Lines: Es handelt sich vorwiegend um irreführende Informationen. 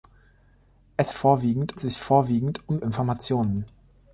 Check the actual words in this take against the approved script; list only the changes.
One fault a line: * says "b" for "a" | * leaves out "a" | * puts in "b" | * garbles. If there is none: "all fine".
* says "vorwiegend" for "handelt"
* leaves out "irreführende"